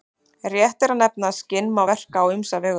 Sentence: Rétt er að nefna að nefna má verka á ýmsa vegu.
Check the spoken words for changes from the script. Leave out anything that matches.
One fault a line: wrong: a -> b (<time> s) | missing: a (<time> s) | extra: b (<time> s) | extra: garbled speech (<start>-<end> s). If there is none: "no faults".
wrong: nefna -> skinn (1.4 s)